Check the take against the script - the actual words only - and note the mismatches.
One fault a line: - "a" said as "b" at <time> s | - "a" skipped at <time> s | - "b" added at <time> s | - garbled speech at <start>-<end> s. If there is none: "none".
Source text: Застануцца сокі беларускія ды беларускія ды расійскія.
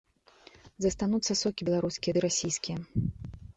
- "беларускія ды" skipped at 2.3 s